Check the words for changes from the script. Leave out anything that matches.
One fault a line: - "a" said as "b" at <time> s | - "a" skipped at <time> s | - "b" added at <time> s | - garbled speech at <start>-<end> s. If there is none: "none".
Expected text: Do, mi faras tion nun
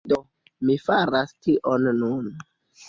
none